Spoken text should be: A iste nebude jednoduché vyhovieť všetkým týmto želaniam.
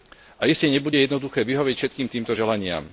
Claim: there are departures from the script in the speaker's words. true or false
false